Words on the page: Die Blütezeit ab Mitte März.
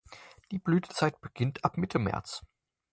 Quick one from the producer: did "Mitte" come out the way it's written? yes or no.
yes